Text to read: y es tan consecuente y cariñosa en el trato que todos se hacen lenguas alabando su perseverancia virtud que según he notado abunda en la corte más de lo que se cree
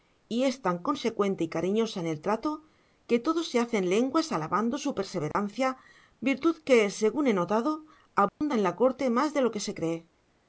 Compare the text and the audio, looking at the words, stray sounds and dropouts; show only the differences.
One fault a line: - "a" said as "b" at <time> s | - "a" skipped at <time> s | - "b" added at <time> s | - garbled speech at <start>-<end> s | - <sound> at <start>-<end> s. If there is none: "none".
- dropout at 5.3-5.3 s
- dropout at 8.3-8.4 s